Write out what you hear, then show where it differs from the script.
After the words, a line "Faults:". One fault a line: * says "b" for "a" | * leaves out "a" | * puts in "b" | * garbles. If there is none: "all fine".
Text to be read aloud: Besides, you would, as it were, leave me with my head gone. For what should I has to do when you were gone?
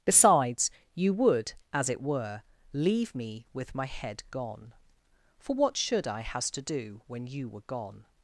Besides, you would, as it were, leave me with my head gone. For what should I has to do when you were gone?
Faults:
all fine